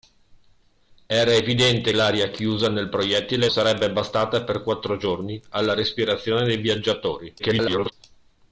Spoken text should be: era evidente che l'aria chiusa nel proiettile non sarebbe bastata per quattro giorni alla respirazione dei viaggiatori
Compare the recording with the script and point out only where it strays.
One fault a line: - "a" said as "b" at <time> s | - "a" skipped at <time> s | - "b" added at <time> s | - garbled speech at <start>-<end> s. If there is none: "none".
- "che" skipped at 1.9 s
- "non" skipped at 3.5 s
- garbled speech at 7.4-7.9 s